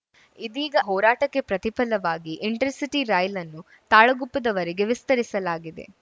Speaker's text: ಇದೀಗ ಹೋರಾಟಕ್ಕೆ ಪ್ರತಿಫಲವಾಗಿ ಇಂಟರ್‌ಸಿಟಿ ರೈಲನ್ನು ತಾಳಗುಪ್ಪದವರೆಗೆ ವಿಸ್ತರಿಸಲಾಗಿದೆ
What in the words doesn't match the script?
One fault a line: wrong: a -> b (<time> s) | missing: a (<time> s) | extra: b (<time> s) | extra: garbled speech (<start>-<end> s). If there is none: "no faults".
no faults